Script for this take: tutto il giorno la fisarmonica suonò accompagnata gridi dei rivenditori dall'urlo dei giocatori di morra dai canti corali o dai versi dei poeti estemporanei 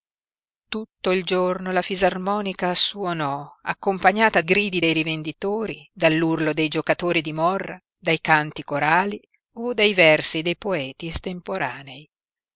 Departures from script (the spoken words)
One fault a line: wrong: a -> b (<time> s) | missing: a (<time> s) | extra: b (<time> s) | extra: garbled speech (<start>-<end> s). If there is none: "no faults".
no faults